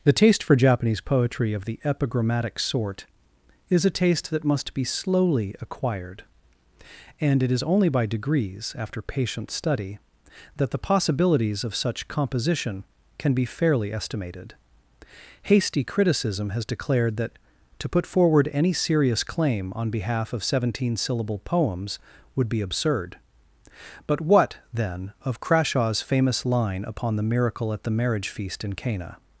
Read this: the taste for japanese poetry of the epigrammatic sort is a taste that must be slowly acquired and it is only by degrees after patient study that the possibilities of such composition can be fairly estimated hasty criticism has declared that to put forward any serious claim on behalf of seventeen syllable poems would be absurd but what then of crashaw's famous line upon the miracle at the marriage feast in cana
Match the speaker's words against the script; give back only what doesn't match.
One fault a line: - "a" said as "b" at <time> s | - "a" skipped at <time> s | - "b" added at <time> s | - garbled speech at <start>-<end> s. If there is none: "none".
none